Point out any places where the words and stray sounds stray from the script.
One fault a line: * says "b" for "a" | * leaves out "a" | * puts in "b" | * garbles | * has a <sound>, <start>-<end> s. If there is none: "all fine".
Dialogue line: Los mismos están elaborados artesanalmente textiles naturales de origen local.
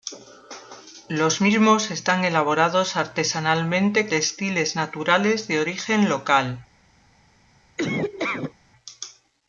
* has a laugh, 7.8-8.5 s